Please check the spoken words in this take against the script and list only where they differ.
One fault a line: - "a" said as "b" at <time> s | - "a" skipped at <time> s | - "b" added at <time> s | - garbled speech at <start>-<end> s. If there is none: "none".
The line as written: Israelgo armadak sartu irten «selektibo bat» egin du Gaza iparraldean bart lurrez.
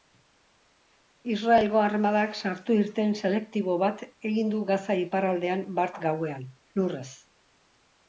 - "gauean" added at 6.1 s